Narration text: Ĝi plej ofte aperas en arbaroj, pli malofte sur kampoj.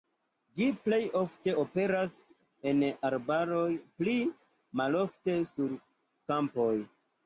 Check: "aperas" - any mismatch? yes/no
no